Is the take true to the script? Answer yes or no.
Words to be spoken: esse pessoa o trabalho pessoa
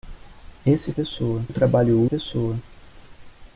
yes